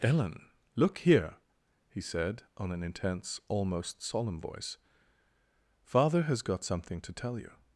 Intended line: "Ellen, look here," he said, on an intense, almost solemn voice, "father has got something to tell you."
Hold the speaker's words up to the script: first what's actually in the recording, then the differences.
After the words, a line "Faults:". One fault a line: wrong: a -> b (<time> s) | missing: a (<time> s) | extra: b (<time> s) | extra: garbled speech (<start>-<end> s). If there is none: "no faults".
"Ellen, look here," he said, on an intense, almost solemn voice, "father has got something to tell you."
Faults:
no faults